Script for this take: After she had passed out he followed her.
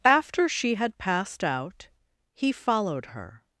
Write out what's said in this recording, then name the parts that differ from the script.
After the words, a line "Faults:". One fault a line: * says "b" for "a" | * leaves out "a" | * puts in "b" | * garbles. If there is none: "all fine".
After she had passed out he followed her.
Faults:
all fine